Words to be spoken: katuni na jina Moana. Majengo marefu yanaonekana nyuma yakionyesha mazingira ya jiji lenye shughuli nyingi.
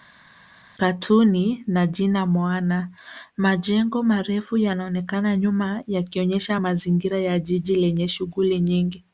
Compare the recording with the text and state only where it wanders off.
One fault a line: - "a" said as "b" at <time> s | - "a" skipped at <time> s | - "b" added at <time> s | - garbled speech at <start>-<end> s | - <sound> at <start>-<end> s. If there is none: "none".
none